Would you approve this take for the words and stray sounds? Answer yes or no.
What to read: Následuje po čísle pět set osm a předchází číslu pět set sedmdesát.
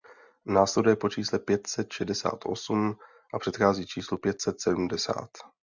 no